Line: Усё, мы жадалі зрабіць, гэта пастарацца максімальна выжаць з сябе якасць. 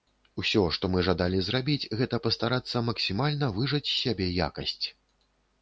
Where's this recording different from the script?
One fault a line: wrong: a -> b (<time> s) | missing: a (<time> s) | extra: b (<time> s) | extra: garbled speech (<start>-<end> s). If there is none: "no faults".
extra: што (0.8 s)